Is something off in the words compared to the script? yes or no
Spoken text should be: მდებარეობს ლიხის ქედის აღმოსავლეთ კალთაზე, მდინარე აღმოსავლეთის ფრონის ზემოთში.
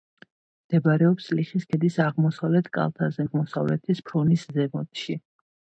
yes